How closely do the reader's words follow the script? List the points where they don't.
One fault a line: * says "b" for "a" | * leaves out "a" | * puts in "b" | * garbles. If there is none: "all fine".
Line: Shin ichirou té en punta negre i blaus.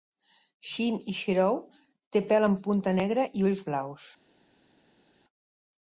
* puts in "pèl"
* puts in "ulls"